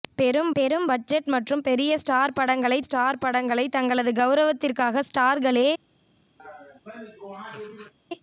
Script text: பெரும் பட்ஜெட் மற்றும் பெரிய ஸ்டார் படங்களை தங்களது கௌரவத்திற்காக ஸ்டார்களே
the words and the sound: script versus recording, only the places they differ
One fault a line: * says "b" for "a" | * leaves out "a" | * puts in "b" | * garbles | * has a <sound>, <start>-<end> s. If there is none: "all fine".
* puts in "பெரும்"
* puts in "ஸ்டார் படங்களை"
* has a laugh, 6.4-7.9 s